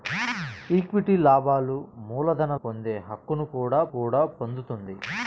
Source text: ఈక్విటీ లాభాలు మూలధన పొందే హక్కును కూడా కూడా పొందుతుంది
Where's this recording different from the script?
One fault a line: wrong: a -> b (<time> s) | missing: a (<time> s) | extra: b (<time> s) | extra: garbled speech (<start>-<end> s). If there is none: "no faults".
no faults